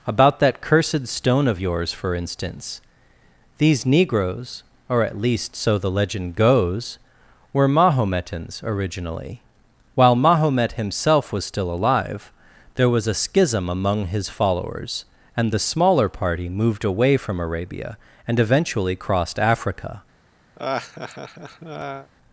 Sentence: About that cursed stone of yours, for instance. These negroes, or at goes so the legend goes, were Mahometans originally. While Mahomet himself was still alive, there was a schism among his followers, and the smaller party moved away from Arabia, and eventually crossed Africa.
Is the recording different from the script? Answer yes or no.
yes